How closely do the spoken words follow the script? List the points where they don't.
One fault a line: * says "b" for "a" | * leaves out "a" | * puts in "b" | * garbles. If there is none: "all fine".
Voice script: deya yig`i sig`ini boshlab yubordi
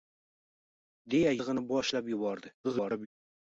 * leaves out "yig`i"
* garbles